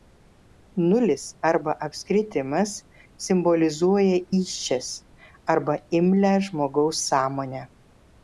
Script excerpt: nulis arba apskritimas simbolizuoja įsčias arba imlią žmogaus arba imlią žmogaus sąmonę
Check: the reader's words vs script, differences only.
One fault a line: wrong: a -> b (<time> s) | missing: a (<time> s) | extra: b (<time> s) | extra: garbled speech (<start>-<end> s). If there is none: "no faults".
missing: arba imlią žmogaus (7.0 s)